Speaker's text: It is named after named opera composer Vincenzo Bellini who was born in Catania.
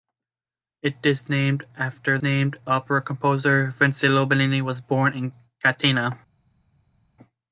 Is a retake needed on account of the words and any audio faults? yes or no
no